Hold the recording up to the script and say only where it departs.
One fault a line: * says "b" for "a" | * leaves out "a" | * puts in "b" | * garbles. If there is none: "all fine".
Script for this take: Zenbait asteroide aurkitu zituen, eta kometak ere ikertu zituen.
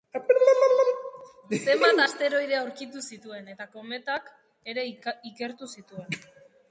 all fine